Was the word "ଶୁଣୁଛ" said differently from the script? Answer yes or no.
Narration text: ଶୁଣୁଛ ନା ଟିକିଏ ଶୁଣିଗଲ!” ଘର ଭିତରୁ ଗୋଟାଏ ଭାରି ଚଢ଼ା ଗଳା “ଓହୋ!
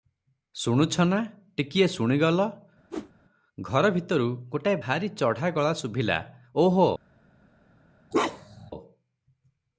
no